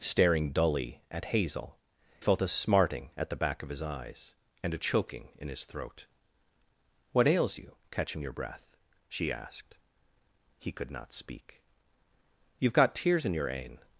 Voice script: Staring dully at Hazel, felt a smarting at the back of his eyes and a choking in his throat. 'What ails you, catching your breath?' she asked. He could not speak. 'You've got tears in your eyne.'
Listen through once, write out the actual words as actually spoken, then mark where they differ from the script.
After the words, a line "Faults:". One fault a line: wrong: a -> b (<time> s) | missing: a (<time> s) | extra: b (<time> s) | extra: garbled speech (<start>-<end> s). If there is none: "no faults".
Staring dully at Hazel, felt a smarting at the back of his eyes and a choking in his throat. 'What ails you, catching your breath?' she asked. He could not speak. 'You've got tears in your eyne.'
Faults:
no faults